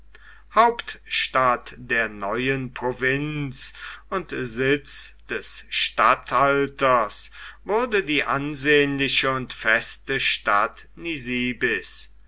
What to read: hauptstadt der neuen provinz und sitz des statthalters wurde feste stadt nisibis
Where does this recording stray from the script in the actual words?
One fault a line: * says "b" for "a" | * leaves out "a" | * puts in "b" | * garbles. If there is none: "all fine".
* puts in "die ansehnliche und"